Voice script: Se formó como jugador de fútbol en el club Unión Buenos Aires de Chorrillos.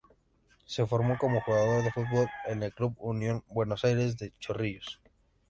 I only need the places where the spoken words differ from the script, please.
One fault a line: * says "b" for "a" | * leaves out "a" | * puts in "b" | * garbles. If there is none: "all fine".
all fine